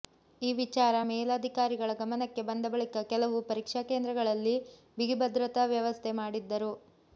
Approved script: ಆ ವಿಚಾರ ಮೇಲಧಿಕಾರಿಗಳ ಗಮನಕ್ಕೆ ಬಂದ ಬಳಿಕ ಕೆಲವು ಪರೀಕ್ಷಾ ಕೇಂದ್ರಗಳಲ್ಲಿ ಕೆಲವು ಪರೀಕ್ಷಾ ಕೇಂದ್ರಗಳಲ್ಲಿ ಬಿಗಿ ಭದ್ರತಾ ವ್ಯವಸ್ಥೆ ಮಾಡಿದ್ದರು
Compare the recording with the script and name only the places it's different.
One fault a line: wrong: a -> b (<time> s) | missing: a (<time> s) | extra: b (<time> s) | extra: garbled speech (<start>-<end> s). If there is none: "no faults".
wrong: ಆ -> ಈ (0.4 s)
missing: ಕೆಲವು ಪರೀಕ್ಷಾ ಕೇಂದ್ರಗಳಲ್ಲಿ (4.6 s)